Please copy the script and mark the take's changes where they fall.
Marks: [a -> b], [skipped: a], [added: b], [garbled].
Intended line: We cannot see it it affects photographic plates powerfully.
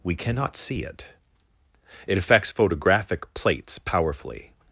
We cannot see it it affects photographic plates powerfully.